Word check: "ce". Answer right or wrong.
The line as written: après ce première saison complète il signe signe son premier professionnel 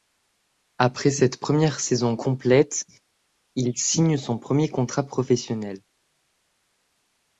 wrong